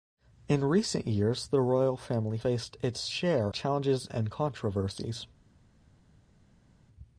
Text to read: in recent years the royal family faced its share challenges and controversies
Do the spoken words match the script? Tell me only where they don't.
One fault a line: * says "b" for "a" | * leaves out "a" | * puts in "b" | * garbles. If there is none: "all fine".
all fine